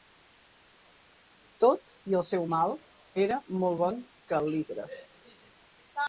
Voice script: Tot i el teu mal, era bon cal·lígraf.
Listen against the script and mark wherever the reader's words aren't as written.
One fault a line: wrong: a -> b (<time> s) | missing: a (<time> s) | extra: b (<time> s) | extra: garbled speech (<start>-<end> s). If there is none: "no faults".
wrong: teu -> seu (2.3 s)
extra: molt (3.6 s)